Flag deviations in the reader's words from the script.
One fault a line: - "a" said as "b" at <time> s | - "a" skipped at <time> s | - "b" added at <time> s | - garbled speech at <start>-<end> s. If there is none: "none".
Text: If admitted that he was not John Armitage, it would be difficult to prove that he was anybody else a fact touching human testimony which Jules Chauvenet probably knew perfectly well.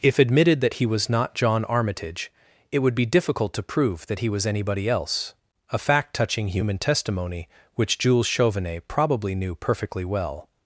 none